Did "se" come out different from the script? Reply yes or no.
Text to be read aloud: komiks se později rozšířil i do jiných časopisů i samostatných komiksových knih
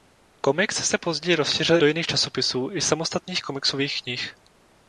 no